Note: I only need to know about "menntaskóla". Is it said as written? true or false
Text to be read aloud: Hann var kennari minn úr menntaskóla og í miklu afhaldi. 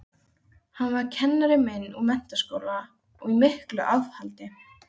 true